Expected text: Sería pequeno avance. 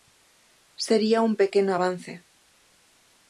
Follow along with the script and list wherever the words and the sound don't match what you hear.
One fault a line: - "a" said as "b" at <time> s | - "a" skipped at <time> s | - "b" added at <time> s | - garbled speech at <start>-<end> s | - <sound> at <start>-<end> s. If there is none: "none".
- "un" added at 1.2 s